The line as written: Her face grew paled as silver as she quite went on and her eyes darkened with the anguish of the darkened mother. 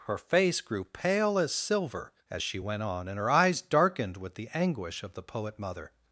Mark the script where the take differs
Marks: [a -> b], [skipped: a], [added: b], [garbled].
Her face grew [paled -> pale] as silver as she [skipped: quite] went on and her eyes darkened with the anguish of the [darkened -> poet] mother.